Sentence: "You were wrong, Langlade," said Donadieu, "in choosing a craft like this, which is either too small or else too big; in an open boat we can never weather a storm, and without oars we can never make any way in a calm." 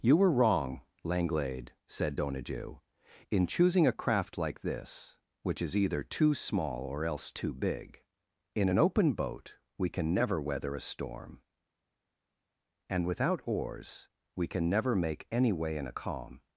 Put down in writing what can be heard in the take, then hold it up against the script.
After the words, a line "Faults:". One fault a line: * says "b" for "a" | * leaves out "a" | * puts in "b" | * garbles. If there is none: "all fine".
"You were wrong, Langlade," said Donadieu, "in choosing a craft like this, which is either too small or else too big; in an open boat we can never weather a storm, and without oars we can never make any way in a calm."
Faults:
all fine